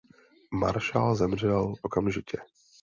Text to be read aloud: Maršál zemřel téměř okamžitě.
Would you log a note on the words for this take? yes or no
yes